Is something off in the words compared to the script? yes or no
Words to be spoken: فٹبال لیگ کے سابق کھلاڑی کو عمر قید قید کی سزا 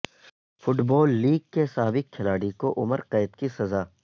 yes